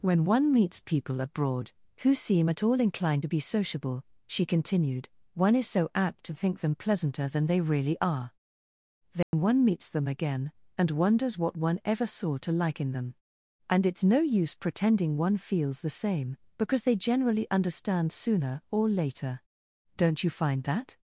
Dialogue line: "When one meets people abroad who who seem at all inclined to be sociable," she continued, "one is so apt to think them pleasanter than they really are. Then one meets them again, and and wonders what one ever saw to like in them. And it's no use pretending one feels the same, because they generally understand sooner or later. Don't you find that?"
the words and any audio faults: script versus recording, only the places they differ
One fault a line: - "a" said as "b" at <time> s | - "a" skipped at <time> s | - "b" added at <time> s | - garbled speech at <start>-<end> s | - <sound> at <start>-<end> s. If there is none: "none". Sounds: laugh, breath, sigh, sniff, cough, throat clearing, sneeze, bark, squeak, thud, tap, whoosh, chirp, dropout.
- "who" skipped at 2.1 s
- dropout at 9.2-9.3 s
- "and" skipped at 10.9 s